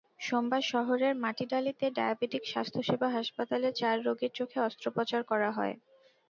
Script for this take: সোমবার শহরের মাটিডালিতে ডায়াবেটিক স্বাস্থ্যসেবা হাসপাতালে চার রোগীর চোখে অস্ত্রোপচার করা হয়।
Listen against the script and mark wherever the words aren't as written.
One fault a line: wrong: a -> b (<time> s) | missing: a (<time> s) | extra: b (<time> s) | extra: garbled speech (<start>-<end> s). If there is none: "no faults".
no faults